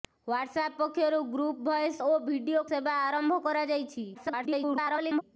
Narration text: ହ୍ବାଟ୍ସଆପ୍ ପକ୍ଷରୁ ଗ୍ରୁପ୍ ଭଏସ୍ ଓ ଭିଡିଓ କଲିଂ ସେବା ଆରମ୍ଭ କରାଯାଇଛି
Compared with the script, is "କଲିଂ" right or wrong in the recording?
wrong